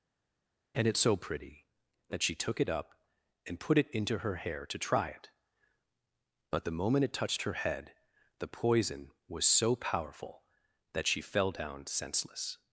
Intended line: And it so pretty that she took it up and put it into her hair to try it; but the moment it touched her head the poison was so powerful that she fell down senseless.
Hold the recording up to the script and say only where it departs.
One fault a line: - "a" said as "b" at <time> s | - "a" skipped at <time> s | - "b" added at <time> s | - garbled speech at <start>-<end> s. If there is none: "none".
none